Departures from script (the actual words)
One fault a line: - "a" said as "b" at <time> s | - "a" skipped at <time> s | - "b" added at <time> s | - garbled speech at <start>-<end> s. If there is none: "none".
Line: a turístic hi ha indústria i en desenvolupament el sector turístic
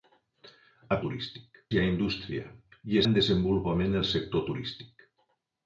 none